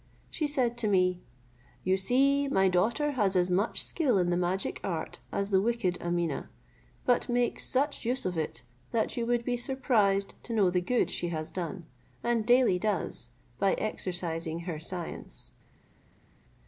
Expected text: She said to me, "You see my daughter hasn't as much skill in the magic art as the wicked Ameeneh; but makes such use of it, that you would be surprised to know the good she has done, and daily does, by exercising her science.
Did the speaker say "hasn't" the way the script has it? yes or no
no